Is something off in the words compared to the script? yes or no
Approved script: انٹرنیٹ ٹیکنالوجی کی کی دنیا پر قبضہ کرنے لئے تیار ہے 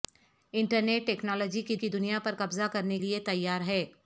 no